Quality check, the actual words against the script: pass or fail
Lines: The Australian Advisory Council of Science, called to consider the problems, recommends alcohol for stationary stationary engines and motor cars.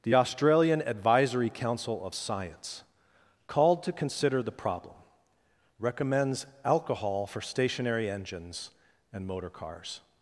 fail